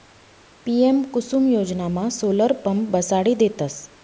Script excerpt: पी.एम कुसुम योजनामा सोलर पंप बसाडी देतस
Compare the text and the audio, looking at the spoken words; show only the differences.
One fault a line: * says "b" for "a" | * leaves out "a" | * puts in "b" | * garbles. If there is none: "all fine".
all fine